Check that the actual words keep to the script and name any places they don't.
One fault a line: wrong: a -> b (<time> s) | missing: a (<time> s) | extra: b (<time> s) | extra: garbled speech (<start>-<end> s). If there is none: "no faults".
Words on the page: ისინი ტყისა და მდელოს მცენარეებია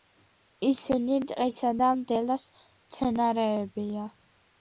no faults